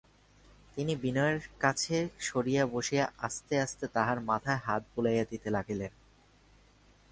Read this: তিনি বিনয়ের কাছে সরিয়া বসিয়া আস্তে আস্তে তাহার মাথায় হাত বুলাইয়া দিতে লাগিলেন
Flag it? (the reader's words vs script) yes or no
no